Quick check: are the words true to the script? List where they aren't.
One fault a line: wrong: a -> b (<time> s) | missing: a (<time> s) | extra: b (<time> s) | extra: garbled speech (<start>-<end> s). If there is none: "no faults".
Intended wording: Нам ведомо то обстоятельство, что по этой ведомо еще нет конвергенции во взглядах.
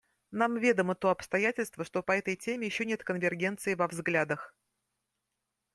wrong: ведомо -> теме (2.4 s)